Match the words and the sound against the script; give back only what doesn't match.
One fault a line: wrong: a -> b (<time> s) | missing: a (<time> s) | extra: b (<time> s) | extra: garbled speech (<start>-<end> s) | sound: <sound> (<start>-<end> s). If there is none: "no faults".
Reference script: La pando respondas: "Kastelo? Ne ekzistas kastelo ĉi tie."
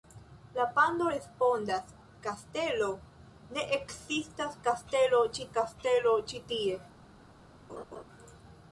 extra: kastelo ĉi (5.6 s)
sound: laugh (7.7-8.0 s)